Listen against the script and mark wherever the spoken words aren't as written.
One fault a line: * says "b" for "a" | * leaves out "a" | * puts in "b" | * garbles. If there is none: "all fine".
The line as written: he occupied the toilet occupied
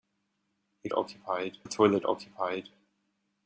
all fine